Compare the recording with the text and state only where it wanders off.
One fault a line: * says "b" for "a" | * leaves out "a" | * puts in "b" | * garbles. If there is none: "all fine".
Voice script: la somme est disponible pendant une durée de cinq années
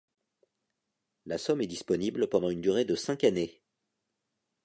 all fine